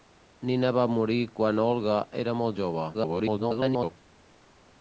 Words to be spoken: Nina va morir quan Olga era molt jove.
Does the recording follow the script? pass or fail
fail